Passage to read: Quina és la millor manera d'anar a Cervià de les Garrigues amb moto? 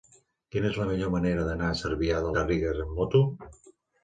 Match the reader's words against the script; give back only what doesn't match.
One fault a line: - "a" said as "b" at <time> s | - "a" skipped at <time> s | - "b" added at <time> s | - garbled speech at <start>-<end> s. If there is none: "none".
- "les" skipped at 2.3 s